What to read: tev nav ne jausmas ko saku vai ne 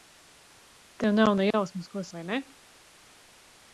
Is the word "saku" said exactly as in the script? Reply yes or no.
no